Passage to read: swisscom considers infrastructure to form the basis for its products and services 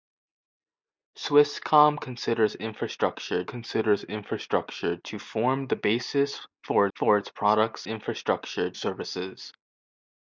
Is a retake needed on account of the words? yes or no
yes